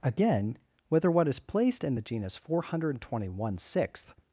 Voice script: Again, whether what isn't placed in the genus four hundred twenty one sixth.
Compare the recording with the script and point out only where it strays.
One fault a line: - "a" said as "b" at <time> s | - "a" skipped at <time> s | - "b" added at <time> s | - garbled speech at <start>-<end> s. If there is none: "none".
- "isn't" said as "is" at 1.3 s